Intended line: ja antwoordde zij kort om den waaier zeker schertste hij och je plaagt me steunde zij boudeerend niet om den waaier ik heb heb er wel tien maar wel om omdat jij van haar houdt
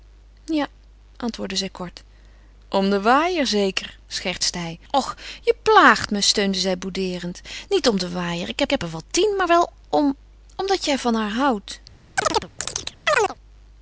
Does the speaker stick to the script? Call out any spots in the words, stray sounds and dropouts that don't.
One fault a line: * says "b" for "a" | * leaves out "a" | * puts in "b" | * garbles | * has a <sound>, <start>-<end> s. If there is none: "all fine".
* has a chirp, 12.2-13.4 s